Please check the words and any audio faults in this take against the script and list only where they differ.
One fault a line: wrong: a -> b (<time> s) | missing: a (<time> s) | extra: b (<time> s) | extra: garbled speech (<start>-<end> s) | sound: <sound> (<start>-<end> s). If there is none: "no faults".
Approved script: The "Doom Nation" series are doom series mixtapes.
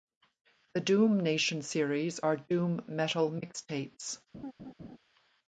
wrong: series -> metal (2.9 s)
sound: laugh (4.3-5.0 s)